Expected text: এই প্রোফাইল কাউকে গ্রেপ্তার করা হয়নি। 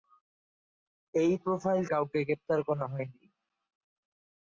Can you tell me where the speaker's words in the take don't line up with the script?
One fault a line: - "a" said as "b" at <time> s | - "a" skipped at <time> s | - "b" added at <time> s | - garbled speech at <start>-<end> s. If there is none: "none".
none